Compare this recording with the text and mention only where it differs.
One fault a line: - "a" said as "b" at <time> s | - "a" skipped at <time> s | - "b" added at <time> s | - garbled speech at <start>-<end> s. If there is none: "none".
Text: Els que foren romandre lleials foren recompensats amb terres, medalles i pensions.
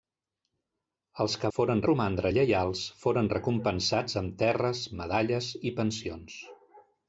none